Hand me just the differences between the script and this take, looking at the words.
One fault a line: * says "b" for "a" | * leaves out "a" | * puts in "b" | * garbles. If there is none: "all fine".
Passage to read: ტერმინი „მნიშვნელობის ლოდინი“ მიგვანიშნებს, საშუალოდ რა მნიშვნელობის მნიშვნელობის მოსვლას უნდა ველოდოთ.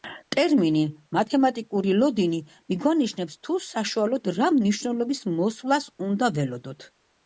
* says "მათემატიკური" for "მნიშვნელობის"
* puts in "თუ"
* leaves out "მნიშვნელობის"